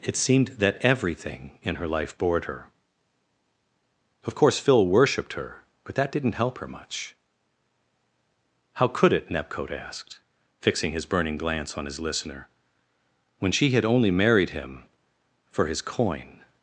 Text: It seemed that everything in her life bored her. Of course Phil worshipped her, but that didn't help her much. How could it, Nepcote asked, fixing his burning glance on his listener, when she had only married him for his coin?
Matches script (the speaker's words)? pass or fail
pass